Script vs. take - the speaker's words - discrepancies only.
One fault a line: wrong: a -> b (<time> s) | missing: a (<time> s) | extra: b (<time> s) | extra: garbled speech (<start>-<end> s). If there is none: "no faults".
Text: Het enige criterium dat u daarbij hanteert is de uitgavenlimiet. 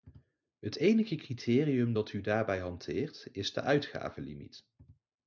no faults